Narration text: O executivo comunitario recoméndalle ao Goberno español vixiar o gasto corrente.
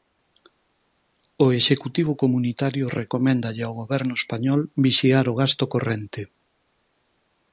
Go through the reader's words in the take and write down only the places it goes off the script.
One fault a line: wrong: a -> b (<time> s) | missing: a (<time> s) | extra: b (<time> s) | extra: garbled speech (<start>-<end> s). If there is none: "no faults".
no faults